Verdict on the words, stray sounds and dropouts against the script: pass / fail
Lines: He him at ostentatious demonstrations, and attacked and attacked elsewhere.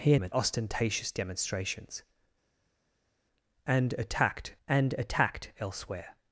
pass